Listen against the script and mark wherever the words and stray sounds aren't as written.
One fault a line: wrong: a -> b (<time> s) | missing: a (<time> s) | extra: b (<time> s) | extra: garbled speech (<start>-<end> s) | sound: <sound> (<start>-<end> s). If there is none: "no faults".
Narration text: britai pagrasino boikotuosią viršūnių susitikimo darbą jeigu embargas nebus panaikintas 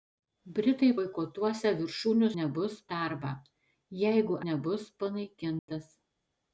missing: pagrasino (0.9 s)
wrong: susitikimo -> nebus (2.4 s)
missing: embargas (4.4 s)
sound: dropout (5.6-5.7 s)